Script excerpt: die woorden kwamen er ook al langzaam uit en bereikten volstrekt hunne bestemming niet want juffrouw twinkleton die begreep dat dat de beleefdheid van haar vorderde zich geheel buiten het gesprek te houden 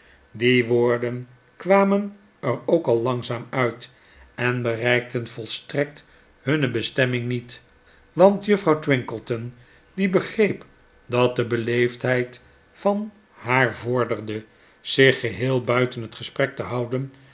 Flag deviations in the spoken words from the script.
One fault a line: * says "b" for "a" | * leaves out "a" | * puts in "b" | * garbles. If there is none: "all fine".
* leaves out "dat"